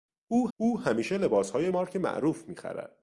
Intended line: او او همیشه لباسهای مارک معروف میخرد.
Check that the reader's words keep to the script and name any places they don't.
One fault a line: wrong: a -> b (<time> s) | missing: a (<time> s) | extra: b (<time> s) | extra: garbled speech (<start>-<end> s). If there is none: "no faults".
no faults